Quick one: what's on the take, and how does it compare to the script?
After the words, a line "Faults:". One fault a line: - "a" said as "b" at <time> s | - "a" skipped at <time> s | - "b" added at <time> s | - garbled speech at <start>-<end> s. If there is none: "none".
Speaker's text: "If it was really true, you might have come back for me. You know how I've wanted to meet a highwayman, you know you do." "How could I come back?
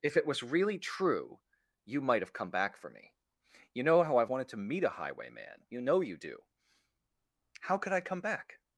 "If it was really true, you might have come back for me. You know how I've wanted to meet a highwayman, you know you do." "How could I come back?
Faults:
none